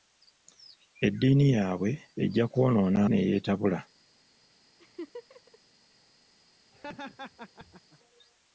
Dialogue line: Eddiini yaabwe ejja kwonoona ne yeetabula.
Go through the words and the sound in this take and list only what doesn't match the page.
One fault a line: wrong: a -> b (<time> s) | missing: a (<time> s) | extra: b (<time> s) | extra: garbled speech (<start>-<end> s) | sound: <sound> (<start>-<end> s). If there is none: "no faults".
sound: laugh (4.8-5.6 s)
sound: laugh (6.7-8.0 s)